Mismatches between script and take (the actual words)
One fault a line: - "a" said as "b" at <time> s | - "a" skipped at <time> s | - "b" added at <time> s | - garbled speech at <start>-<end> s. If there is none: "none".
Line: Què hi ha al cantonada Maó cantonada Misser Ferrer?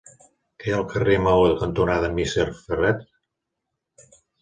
- "cantonada" said as "carrer" at 0.9 s